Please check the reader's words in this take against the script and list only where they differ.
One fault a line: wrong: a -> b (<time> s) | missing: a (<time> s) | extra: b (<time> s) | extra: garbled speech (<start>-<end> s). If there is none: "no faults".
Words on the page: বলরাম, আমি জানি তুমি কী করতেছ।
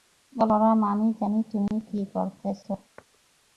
no faults